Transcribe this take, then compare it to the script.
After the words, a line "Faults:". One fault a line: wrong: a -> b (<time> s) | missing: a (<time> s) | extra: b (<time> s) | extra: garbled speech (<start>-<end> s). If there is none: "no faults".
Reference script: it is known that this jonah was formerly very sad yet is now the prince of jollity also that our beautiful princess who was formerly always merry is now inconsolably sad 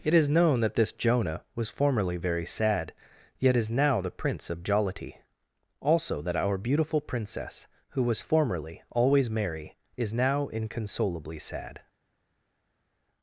it is known that this jonah was formerly very sad yet is now the prince of jollity also that our beautiful princess who was formerly always merry is now inconsolably sad
Faults:
no faults